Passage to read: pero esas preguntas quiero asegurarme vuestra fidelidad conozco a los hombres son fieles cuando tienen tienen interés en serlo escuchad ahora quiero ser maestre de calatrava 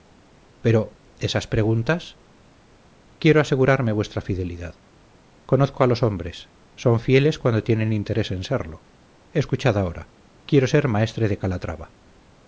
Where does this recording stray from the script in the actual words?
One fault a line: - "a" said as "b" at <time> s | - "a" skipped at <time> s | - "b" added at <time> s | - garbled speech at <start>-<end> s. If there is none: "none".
- "tienen" skipped at 7.9 s